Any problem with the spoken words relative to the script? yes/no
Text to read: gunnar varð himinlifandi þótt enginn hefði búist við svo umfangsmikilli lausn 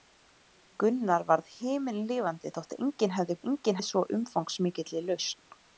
yes